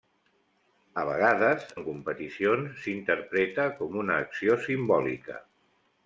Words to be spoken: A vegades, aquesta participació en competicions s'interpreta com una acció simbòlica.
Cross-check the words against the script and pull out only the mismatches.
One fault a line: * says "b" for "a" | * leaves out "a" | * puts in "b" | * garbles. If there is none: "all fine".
* leaves out "aquesta participació"